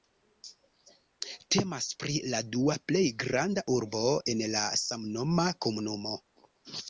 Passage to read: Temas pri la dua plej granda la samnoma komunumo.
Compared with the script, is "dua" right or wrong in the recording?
right